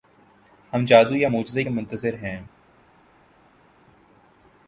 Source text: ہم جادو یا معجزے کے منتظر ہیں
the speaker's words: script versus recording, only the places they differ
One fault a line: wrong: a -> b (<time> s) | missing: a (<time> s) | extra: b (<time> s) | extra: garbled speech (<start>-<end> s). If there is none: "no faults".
no faults